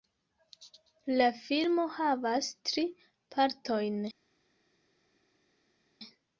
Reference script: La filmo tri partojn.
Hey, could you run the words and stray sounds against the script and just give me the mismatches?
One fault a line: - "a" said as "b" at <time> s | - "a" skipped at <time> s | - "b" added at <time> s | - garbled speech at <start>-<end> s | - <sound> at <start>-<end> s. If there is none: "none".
- "havas" added at 2.0 s